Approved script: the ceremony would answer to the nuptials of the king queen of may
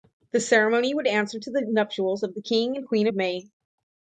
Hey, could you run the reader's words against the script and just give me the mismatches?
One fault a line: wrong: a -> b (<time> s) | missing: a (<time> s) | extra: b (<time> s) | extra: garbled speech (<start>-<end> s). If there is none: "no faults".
extra: and (2.8 s)